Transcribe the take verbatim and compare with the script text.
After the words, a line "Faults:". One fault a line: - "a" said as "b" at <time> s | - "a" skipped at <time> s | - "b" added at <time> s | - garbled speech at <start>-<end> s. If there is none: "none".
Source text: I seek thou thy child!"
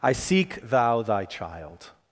I seek thou thy child!"
Faults:
none